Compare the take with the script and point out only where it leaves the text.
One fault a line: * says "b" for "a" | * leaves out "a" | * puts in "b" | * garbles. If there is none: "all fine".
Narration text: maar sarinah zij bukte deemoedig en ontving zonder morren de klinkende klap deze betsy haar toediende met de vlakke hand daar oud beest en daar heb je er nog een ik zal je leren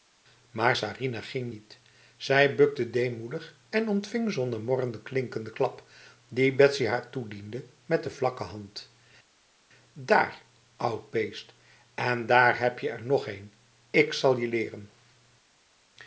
* puts in "ging niet"
* says "die" for "deze"